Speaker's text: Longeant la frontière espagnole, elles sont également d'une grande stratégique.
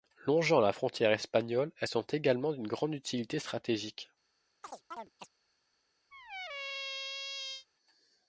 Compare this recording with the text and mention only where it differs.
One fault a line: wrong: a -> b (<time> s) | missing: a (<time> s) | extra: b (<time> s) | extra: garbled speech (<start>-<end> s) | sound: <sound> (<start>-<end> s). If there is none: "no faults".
extra: utilité (3.0 s)
sound: chirp (4.6-5.3 s)
sound: squeak (6.1-7.7 s)